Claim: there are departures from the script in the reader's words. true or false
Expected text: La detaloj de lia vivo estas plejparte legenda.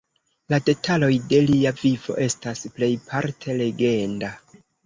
false